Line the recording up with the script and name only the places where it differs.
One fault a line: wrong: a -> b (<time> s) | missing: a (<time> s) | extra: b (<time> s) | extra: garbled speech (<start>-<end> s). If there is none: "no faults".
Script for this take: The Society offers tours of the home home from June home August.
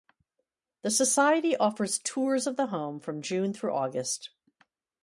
missing: home (3.0 s)
wrong: home -> through (3.5 s)